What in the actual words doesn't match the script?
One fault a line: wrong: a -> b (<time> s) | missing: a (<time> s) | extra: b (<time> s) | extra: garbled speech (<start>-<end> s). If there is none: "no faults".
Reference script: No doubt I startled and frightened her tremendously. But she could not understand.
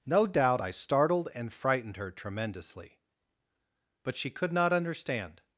no faults